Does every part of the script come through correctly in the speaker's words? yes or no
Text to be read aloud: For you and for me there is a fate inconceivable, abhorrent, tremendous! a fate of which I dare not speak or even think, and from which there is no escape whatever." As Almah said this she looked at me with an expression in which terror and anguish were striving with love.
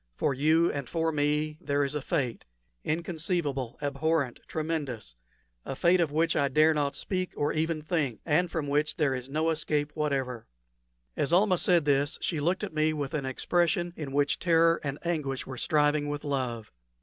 yes